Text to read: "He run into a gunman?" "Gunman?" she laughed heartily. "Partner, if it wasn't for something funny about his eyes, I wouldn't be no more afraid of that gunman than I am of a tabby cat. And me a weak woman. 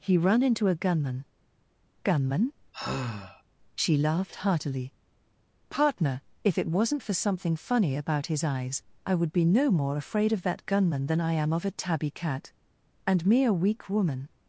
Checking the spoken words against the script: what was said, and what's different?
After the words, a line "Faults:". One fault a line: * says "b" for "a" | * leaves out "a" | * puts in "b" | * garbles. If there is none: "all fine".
"He run into a gunman?" "Gunman?" she laughed heartily. "Partner, if it wasn't for something funny about his eyes, I would be no more afraid of that gunman than I am of a tabby cat. And me a weak woman.
Faults:
* says "would" for "wouldn't"